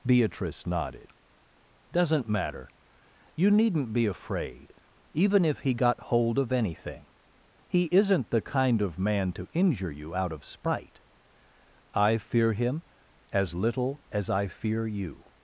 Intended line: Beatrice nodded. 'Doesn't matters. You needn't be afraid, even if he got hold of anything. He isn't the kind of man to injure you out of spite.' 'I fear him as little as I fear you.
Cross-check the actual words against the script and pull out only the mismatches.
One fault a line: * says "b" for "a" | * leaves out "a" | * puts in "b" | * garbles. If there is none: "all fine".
* says "matter" for "matters"